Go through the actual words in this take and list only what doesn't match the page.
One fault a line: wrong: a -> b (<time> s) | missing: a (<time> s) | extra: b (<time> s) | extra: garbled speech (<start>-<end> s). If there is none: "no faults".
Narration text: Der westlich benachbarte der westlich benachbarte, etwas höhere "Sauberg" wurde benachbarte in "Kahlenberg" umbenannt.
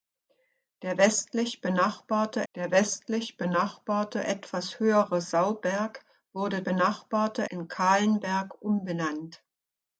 no faults